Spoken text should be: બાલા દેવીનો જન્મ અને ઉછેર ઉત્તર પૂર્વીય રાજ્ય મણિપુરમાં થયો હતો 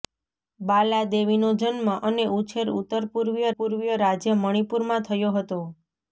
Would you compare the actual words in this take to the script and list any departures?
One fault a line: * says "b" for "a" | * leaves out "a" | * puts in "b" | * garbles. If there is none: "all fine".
* puts in "પૂર્વીય"